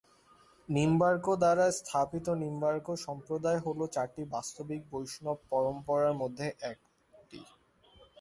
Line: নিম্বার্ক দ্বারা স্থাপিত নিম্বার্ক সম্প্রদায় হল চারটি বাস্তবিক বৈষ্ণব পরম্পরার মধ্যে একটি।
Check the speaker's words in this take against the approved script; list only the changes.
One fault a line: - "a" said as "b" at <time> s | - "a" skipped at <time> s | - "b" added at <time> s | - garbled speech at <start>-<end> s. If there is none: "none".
none